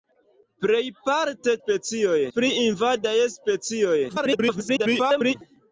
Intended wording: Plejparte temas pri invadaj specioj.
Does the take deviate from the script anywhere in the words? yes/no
yes